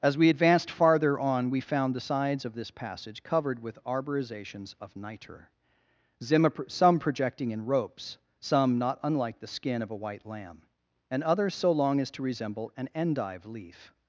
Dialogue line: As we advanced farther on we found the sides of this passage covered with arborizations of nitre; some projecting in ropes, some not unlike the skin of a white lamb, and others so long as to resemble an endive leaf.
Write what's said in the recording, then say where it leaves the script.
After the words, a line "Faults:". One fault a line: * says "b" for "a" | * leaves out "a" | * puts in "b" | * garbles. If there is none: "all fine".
As we advanced farther on we found the sides of this passage covered with arborizations of nitre; some projecting in ropes, some not unlike the skin of a white lamb, and others so long as to resemble an endive leaf.
Faults:
all fine